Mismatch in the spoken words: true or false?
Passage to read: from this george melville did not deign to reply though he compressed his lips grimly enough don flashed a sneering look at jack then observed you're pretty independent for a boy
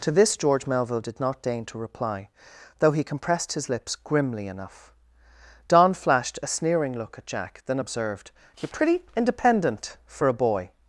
true